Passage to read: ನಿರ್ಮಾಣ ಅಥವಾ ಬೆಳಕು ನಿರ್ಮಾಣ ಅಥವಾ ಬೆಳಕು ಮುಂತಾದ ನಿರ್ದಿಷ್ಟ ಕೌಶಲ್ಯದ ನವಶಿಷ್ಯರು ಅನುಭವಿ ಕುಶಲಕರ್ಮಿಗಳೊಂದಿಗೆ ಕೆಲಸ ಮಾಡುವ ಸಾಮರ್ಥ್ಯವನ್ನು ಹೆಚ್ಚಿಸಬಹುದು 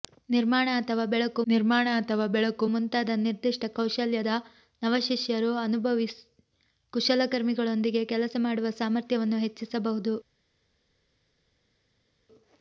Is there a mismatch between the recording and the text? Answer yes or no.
no